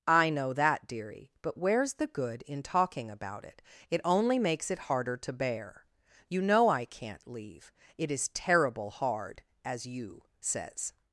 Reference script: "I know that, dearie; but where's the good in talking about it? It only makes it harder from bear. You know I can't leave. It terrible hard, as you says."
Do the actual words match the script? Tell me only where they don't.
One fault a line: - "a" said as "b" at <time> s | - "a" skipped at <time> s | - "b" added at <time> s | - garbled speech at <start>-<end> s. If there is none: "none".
- "from" said as "to" at 5.2 s
- "is" added at 8.1 s